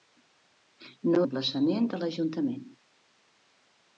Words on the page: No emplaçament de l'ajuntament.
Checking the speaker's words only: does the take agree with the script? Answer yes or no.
yes